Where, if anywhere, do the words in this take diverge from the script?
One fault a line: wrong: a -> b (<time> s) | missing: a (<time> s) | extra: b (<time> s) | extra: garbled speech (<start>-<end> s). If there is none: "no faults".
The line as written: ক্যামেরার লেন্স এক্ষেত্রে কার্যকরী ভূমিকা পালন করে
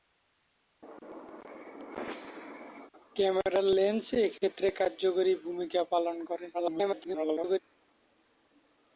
extra: garbled speech (6.5-7.6 s)